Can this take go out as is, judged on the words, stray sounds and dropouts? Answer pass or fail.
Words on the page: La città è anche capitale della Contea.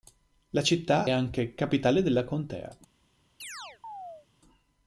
fail